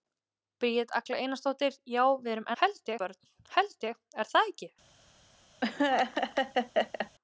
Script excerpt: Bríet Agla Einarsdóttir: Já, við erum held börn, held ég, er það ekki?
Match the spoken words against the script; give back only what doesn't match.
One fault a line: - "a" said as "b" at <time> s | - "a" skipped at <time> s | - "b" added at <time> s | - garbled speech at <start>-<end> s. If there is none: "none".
none